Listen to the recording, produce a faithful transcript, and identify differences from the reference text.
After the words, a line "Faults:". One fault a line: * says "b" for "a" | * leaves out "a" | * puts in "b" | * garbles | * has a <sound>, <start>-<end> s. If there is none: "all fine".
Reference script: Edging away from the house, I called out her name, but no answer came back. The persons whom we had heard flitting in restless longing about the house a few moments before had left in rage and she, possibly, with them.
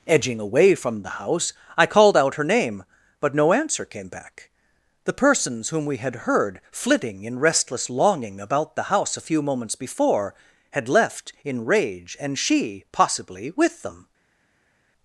Edging away from the house, I called out her name, but no answer came back. The persons whom we had heard flitting in restless longing about the house a few moments before had left in rage and she, possibly, with them.
Faults:
all fine